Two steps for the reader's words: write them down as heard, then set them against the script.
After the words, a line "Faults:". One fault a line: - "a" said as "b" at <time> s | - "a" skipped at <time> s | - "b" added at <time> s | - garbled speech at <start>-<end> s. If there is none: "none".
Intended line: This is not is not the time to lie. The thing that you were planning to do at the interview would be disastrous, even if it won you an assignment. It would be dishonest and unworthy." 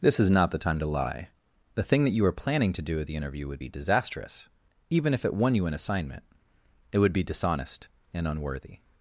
This is not the time to lie. The thing that you were planning to do at the interview would be disastrous, even if it won you an assignment. It would be dishonest and unworthy."
Faults:
- "is not" skipped at 0.5 s